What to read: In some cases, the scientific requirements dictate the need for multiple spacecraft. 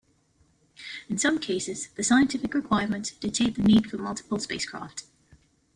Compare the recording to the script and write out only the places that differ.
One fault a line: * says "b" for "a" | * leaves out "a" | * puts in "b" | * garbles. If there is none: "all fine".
all fine